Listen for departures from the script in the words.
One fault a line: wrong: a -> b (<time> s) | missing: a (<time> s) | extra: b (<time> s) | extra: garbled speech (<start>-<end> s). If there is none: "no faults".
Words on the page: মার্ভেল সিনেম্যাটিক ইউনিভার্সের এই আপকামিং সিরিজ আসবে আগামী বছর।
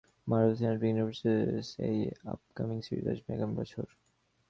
no faults